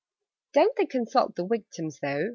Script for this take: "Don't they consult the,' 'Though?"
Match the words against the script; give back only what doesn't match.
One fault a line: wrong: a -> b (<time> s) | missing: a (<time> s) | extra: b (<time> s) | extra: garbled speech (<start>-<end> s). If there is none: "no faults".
extra: Victims (1.4 s)